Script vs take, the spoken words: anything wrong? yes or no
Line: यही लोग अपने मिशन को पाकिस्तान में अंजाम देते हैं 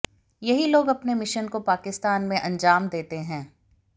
no